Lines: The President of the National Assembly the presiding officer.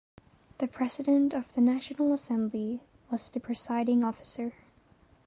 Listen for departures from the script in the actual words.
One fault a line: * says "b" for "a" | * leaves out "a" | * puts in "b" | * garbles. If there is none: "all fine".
* puts in "was"